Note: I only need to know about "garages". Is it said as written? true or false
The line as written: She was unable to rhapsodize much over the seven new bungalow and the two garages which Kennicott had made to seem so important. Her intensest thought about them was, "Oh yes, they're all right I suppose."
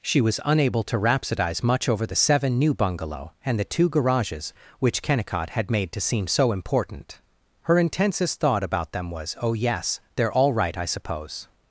true